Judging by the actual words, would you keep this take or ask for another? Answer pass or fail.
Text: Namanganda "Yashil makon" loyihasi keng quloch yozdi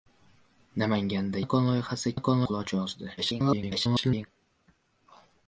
fail